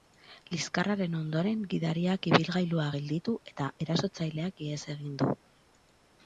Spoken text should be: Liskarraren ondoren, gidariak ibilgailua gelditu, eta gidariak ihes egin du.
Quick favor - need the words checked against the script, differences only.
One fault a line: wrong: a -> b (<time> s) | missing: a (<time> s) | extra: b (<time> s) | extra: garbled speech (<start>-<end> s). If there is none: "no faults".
wrong: gidariak -> erasotzaileak (3.9 s)